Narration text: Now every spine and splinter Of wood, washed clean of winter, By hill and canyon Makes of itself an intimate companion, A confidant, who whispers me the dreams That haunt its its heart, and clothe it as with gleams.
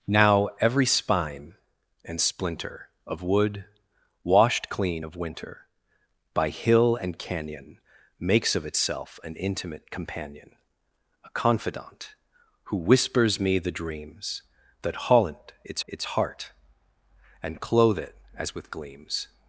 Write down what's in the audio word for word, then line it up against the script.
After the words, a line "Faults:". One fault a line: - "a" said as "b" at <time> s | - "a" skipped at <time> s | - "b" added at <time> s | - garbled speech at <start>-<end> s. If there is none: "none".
Now every spine and splinter Of wood, washed clean of winter, By hill and canyon Makes of itself an intimate companion, A confidant, who whispers me the dreams That haunt its its heart, and clothe it as with gleams.
Faults:
none